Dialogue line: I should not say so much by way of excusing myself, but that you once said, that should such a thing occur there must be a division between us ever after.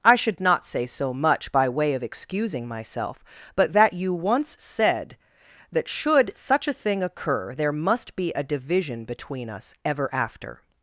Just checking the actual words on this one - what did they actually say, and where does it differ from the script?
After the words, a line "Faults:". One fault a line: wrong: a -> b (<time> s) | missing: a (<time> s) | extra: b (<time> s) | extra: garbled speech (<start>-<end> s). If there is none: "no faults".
I should not say so much by way of excusing myself, but that you once said, that should such a thing occur there must be a division between us ever after.
Faults:
no faults